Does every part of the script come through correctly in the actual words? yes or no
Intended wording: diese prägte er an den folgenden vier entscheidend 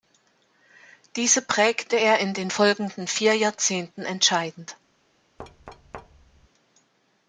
no